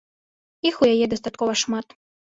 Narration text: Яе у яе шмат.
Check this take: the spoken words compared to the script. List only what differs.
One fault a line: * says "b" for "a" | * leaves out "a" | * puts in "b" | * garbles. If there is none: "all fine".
* says "Іх" for "Яе"
* puts in "дастаткова"